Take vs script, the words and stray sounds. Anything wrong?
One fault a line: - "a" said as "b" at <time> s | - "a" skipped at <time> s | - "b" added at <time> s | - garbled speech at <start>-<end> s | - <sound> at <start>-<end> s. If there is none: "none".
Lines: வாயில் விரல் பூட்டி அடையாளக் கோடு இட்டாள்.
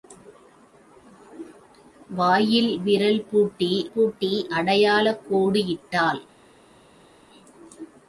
- "பூட்டி" added at 3.9 s